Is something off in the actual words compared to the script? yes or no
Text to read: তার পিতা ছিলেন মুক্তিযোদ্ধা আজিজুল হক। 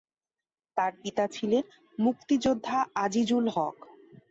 no